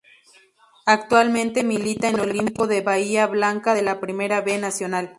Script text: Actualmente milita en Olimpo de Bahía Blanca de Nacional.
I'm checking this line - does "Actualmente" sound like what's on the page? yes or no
yes